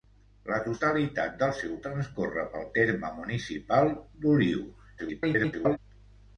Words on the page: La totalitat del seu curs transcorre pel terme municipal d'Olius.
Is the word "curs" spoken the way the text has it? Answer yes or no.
no